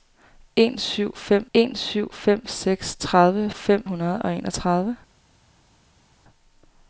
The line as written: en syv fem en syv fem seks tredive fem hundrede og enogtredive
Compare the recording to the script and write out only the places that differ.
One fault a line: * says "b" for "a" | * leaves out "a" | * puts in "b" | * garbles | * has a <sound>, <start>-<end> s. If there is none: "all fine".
all fine